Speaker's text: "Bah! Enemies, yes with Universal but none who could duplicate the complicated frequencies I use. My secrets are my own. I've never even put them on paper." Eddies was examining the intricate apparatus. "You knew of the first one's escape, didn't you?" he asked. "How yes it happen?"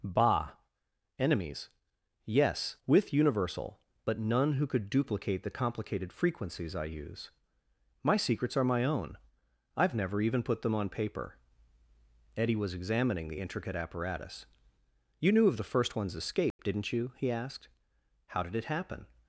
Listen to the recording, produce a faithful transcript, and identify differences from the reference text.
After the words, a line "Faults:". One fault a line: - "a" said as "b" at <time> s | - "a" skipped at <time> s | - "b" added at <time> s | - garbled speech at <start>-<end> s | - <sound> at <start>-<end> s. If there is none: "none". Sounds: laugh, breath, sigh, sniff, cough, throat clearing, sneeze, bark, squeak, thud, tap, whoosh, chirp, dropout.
"Bah! Enemies, yes with Universal but none who could duplicate the complicated frequencies I use. My secrets are my own. I've never even put them on paper." Eddie was examining the intricate apparatus. "You knew of the first one's escape, didn't you?" he asked. "How did it happen?"
Faults:
- "Eddies" said as "Eddie" at 12.4 s
- dropout at 16.5-16.6 s
- "yes" said as "did" at 18.4 s